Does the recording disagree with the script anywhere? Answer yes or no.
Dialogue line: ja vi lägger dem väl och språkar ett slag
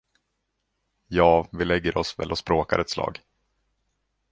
yes